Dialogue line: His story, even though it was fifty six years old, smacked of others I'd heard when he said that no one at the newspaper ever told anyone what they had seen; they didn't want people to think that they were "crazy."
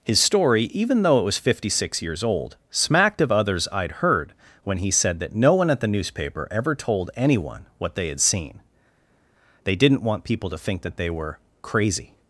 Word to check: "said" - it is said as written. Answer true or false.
true